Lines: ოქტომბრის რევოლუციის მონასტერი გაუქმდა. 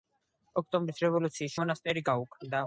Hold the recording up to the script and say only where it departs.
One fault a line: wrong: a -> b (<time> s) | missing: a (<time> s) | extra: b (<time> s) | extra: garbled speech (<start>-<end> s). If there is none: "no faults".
no faults